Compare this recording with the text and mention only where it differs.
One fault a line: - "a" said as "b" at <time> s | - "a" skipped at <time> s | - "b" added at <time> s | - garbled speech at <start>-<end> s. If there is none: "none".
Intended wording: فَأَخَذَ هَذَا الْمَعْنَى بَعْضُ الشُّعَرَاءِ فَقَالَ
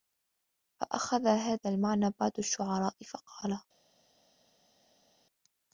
none